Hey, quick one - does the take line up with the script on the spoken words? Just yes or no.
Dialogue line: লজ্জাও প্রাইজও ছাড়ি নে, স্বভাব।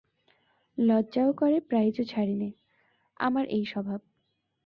no